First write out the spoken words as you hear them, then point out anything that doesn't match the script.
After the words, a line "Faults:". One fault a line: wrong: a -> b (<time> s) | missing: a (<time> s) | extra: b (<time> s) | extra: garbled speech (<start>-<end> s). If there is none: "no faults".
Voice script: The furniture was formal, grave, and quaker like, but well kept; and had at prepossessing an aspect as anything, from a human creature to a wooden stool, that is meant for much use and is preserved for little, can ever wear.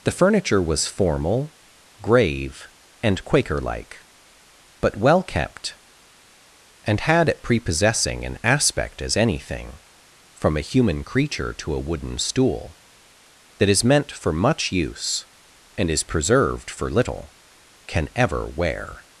The furniture was formal, grave, and quaker like, but well kept; and had at prepossessing an aspect as anything, from a human creature to a wooden stool, that is meant for much use and is preserved for little, can ever wear.
Faults:
no faults